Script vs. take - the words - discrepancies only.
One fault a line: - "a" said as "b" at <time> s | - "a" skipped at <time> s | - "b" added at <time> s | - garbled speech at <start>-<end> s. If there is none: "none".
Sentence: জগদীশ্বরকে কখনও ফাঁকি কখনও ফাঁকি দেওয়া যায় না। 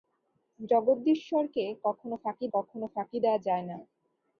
none